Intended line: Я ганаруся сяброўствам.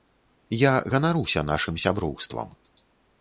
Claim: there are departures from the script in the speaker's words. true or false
true